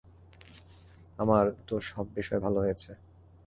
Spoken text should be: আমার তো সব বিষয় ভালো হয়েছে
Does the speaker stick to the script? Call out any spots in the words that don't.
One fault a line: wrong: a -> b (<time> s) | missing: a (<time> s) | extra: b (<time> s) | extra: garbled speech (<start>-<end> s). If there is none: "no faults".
no faults